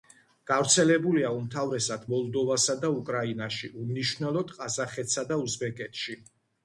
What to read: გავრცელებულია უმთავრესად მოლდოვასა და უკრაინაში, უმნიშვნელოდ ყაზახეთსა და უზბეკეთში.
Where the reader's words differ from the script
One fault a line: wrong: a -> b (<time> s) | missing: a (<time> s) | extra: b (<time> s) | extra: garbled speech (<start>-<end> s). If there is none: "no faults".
no faults